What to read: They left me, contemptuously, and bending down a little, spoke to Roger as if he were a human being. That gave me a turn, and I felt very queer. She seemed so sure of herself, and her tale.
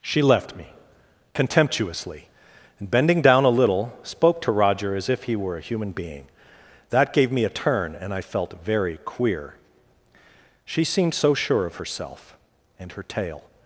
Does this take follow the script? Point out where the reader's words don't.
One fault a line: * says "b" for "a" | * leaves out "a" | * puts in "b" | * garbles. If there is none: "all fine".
* says "She" for "They"